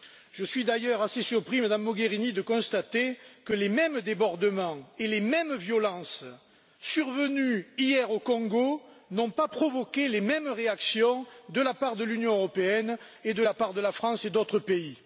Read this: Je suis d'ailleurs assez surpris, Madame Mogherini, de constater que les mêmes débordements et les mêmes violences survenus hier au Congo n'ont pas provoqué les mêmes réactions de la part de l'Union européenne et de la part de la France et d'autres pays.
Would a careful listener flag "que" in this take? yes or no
no